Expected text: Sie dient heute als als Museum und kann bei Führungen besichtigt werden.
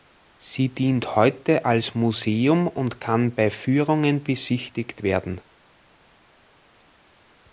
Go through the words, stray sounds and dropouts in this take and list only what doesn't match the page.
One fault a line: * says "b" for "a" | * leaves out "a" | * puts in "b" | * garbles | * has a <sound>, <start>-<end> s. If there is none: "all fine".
* leaves out "als"